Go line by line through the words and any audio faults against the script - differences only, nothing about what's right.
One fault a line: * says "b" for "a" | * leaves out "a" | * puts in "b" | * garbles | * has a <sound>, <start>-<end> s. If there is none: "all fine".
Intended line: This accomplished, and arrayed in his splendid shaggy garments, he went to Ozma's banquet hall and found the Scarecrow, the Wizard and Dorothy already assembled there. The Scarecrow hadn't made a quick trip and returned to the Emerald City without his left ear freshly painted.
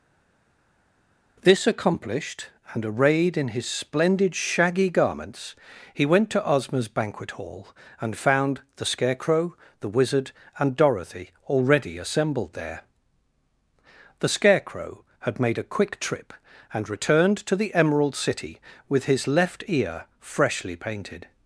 * says "had" for "hadn't"
* says "with" for "without"